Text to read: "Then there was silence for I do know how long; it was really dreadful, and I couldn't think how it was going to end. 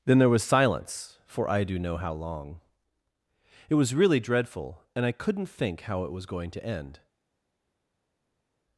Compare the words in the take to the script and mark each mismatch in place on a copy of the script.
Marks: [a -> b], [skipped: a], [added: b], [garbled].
"Then there was silence for I do know how long; it was really dreadful, and I couldn't think how it was going to end.